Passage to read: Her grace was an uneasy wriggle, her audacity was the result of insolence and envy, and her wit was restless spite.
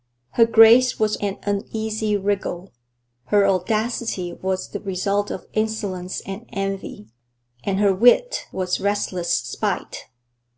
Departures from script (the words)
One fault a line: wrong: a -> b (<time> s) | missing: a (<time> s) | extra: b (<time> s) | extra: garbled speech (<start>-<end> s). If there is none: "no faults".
no faults